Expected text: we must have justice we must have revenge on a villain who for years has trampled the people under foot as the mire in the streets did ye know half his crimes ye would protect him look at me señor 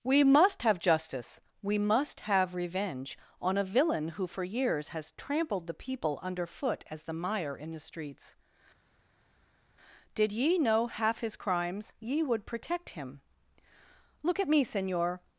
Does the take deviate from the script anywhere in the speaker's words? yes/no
no